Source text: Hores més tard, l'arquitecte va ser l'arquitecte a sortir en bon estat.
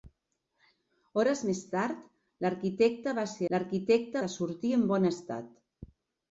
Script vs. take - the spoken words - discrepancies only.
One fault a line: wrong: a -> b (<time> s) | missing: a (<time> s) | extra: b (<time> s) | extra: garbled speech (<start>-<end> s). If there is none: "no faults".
no faults